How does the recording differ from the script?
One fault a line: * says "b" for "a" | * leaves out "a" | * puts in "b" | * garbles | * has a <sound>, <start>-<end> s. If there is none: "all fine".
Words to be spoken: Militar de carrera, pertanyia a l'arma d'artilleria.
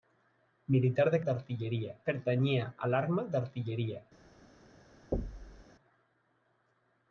* says "d'artilleria" for "carrera"
* has a thud, 5.1-5.6 s